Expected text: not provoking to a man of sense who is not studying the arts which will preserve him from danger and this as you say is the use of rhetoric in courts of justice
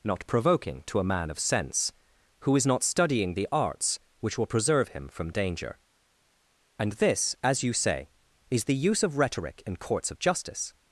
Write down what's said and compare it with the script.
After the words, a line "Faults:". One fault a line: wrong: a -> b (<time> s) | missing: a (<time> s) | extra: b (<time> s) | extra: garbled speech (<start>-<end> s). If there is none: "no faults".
not provoking to a man of sense who is not studying the arts which will preserve him from danger and this as you say is the use of rhetoric in courts of justice
Faults:
no faults